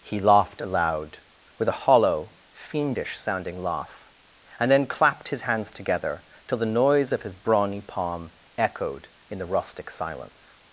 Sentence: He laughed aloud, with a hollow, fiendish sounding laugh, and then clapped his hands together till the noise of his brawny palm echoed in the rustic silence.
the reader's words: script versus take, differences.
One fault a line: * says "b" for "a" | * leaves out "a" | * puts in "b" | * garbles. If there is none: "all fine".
all fine